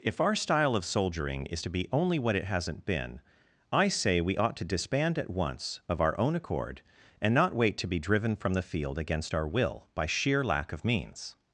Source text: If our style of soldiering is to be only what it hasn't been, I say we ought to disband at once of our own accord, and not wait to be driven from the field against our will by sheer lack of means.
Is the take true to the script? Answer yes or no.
yes